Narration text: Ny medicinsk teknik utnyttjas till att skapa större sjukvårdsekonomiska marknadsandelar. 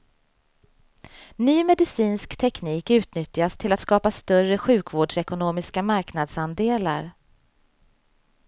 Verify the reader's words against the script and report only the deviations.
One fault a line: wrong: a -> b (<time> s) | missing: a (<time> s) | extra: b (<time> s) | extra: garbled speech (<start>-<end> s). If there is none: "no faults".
no faults